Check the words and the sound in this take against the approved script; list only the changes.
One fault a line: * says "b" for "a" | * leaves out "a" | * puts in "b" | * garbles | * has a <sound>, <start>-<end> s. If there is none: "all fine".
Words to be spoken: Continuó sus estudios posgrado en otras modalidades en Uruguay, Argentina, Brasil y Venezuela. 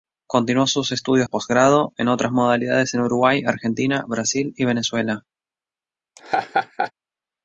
* has a laugh, 6.2-6.9 s